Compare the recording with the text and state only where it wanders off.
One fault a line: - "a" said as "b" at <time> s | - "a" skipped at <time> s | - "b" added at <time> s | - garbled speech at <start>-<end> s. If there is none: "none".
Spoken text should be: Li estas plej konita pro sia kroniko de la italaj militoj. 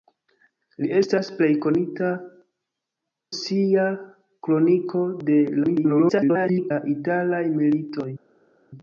- "pro" skipped at 2.1 s
- garbled speech at 5.6-6.7 s